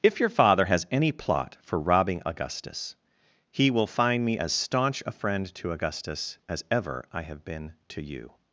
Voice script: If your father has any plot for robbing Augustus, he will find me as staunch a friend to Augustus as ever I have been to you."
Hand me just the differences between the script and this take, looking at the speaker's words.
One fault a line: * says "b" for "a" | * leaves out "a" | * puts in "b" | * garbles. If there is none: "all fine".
all fine